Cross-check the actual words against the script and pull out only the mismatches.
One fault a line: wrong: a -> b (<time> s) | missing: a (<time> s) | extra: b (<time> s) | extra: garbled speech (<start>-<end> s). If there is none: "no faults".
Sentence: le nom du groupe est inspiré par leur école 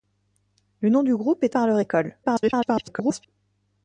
missing: inspiré (1.6 s)
extra: garbled speech (2.2-3.3 s)